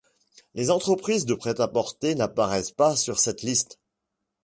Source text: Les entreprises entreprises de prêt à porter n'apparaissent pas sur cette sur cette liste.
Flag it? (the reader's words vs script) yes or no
yes